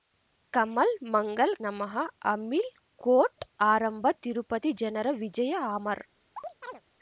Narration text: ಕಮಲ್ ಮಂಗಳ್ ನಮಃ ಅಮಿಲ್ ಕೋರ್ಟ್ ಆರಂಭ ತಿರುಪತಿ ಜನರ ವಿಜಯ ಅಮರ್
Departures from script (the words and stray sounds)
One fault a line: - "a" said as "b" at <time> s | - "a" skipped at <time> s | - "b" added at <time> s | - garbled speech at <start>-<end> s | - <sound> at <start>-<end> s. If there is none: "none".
- chirp at 6.4-6.8 s